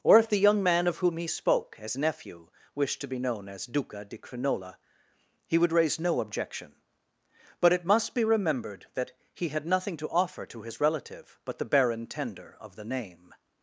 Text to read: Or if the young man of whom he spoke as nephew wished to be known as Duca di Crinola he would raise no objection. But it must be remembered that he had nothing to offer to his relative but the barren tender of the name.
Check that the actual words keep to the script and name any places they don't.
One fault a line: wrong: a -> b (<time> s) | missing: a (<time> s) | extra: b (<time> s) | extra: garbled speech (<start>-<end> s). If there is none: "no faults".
no faults